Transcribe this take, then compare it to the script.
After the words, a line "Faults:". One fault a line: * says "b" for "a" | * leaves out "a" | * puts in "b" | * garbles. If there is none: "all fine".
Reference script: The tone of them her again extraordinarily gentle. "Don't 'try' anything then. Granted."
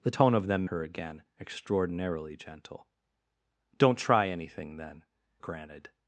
The tone of them her again extraordinarily gentle. "Don't 'try' anything then. Granted."
Faults:
all fine